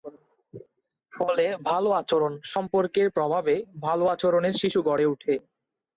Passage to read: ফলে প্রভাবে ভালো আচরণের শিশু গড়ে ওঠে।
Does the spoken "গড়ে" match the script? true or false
true